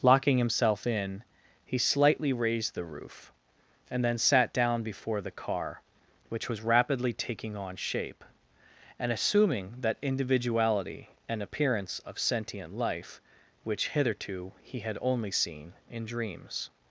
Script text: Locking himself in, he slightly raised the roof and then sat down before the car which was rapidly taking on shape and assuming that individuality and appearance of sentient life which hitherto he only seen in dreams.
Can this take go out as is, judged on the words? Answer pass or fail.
fail